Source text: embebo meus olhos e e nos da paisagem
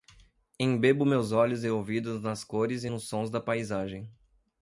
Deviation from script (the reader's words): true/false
true